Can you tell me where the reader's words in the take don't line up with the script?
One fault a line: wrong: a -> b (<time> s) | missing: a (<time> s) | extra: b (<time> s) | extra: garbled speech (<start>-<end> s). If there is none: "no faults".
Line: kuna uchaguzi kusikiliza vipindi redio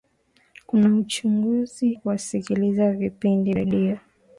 no faults